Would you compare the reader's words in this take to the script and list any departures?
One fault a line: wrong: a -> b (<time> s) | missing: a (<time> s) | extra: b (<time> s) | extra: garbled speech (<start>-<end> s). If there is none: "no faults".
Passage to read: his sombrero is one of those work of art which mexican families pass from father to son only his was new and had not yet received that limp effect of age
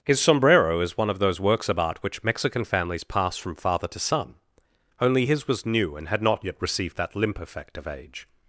wrong: work -> works (1.4 s)